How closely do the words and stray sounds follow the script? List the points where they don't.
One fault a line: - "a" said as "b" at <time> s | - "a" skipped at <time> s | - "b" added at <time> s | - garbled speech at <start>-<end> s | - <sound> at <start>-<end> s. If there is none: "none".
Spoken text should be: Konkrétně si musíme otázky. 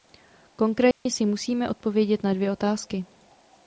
- dropout at 0.9-1.1 s
- "odpovědět na dvě" added at 1.7 s